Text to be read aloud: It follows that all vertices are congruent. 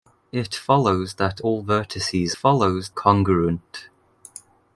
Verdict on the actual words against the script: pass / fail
fail